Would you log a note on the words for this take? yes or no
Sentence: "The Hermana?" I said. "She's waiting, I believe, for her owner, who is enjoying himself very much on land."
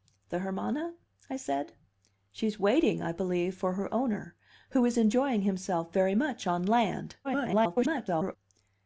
yes